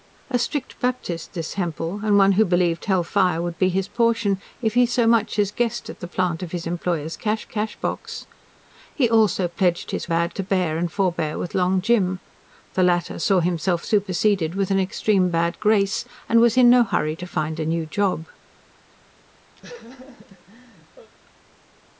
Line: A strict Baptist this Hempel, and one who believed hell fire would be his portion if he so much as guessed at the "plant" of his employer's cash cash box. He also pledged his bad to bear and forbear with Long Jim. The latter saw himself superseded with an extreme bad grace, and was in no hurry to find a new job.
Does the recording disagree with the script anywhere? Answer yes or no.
no